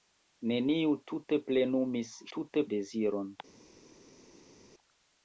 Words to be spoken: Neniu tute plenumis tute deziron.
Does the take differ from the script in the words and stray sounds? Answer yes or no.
no